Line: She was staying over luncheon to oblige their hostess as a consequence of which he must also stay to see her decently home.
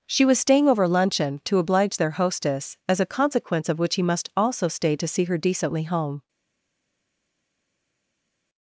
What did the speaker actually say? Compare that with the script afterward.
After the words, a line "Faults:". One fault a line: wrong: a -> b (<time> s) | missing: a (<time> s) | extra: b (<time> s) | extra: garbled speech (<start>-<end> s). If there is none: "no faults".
She was staying over luncheon to oblige their hostess as a consequence of which he must also stay to see her decently home.
Faults:
no faults